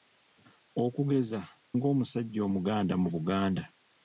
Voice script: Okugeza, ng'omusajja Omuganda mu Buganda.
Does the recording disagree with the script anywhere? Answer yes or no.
no